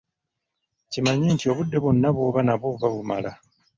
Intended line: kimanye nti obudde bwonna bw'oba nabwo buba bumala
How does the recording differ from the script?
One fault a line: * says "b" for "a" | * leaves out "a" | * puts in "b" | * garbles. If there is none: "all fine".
all fine